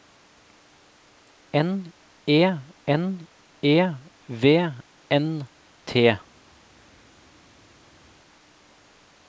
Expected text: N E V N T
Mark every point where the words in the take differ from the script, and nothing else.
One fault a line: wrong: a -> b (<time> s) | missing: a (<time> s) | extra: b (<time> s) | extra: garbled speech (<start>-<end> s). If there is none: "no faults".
extra: n E (2.9 s)